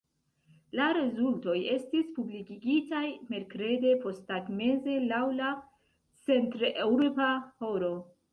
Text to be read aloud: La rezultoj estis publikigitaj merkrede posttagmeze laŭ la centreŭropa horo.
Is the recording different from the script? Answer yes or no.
no